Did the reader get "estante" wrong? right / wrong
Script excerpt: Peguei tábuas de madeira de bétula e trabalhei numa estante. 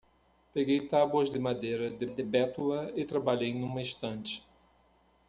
right